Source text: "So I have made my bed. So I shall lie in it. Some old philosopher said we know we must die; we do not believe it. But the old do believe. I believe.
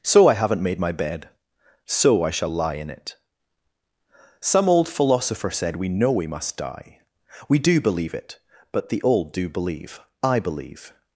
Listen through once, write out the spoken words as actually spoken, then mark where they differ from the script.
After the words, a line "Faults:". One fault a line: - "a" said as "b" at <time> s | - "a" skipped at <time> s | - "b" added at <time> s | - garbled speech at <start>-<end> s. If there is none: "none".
"So I haven't made my bed. So I shall lie in it. Some old philosopher said we know we must die; we do believe it. But the old do believe. I believe.
Faults:
- "have" said as "haven't" at 0.3 s
- "not" skipped at 7.8 s